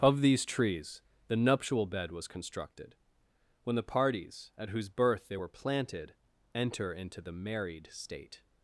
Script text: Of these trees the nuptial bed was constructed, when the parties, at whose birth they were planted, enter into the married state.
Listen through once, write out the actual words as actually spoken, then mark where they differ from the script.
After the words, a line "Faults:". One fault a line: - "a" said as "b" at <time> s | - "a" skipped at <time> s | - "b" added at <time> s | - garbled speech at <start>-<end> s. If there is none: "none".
Of these trees the nuptial bed was constructed, when the parties, at whose birth they were planted, enter into the married state.
Faults:
none